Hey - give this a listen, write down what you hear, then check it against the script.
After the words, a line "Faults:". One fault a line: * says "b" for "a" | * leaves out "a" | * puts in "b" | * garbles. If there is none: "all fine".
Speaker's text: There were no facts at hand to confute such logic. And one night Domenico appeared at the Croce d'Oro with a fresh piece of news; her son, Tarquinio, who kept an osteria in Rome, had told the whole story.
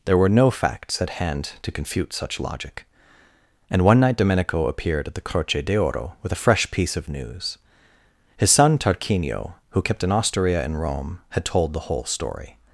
There were no facts at hand to confute such logic. And one night Domenico appeared at the Croce d'Oro with a fresh piece of news; his son, Tarquinio, who kept an osteria in Rome, had told the whole story.
Faults:
* says "his" for "her"